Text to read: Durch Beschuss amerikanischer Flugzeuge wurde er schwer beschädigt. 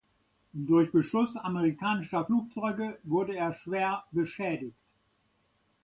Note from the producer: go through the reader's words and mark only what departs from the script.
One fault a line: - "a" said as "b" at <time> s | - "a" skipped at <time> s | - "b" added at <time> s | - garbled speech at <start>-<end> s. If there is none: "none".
none